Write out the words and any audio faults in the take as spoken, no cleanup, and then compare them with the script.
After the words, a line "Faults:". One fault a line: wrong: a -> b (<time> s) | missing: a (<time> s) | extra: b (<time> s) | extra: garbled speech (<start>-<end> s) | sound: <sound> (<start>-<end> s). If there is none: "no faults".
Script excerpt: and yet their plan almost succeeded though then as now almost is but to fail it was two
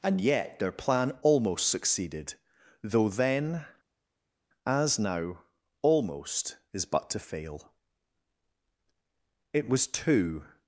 and yet their plan almost succeeded though then as now almost is but to fail it was two
Faults:
no faults